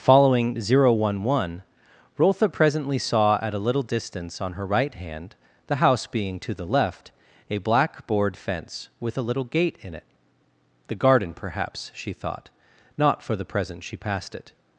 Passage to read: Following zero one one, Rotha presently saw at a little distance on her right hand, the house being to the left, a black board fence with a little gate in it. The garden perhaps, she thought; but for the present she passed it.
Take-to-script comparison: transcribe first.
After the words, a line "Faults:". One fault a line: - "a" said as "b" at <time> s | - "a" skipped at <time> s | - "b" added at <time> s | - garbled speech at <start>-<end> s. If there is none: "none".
Following zero one one, Rotha presently saw at a little distance on her right hand, the house being to the left, a black board fence with a little gate in it. The garden perhaps, she thought; not for the present she passed it.
Faults:
- "but" said as "not" at 13.0 s